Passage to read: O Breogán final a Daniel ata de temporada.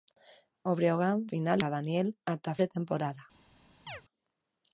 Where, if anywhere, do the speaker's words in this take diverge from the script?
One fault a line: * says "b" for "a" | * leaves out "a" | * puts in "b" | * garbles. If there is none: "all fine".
all fine